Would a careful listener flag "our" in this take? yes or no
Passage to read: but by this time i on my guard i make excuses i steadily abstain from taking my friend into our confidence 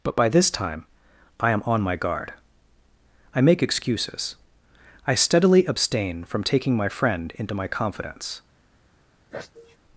yes